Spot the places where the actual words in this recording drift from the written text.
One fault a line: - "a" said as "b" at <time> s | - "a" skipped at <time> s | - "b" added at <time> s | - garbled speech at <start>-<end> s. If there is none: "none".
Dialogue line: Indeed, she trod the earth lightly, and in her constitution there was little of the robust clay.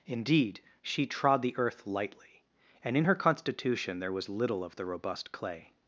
none